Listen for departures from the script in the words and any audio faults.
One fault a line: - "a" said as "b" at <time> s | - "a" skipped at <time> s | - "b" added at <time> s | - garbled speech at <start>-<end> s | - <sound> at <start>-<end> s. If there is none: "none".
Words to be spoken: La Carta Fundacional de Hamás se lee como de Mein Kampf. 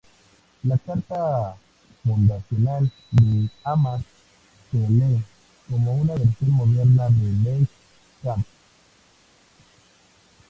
- "una versión moderna" added at 6.0 s